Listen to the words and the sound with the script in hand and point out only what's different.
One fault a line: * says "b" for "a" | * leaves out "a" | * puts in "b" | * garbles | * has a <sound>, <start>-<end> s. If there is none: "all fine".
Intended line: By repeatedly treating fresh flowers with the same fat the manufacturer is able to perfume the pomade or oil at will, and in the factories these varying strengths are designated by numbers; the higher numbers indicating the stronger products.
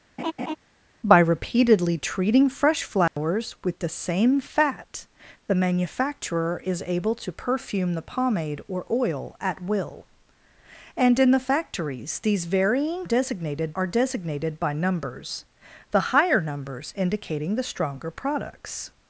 * has a laugh, 0.2-0.6 s
* has a dropout, 3.1-3.2 s
* says "designated" for "strengths"